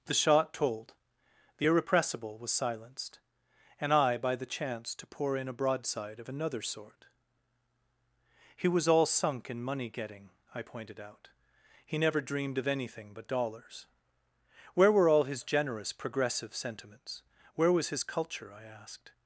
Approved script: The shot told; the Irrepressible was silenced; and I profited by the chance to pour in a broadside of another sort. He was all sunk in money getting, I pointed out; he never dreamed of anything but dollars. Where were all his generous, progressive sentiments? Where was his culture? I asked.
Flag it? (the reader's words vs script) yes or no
yes